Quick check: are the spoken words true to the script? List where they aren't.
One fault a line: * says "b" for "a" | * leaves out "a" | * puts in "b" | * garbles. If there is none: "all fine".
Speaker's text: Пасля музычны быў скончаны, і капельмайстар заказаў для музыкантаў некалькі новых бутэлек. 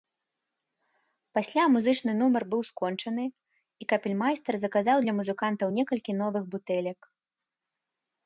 * puts in "нумар"